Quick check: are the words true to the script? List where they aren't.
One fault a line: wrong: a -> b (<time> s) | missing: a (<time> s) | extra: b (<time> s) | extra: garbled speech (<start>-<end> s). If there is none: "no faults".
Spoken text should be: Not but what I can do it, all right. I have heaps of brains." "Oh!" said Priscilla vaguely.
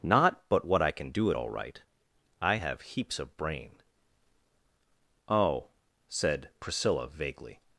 wrong: brains -> brain (3.4 s)